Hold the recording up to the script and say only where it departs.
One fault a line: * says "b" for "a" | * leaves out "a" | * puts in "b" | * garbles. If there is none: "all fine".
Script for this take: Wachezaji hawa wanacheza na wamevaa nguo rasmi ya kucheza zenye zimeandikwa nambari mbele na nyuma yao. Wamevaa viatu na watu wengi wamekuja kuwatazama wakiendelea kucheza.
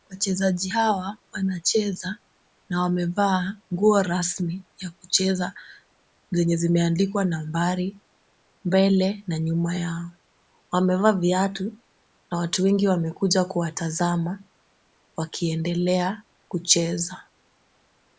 all fine